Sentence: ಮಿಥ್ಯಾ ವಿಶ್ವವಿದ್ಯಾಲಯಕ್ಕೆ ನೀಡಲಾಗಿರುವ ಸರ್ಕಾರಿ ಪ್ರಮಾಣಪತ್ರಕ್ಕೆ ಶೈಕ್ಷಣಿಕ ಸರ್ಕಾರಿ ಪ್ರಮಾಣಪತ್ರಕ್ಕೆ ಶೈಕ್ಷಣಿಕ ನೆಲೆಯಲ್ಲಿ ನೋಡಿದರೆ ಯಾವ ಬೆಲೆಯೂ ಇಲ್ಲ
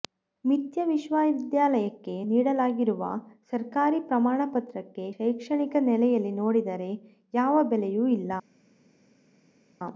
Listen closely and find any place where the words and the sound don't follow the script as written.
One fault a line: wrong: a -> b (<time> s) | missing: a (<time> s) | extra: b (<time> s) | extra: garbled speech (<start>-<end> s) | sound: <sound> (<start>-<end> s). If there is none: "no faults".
missing: ಸರ್ಕಾರಿ ಪ್ರಮಾಣಪತ್ರಕ್ಕೆ ಶೈಕ್ಷಣಿಕ (5.8 s)